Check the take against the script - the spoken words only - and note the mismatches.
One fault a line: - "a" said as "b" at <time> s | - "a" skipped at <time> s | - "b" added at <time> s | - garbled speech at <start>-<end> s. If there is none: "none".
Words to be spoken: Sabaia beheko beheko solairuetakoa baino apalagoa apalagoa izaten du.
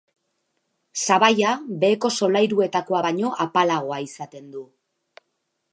- "beheko" skipped at 2.1 s
- "apalagoa" skipped at 4.0 s